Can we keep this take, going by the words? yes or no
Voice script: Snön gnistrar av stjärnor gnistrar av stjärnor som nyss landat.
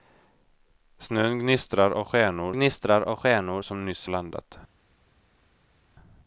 yes